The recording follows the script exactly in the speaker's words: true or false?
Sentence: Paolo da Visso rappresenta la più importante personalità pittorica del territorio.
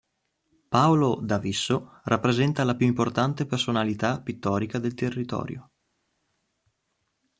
true